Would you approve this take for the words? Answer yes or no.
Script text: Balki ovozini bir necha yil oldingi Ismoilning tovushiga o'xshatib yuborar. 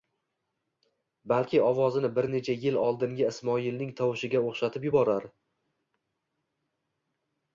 yes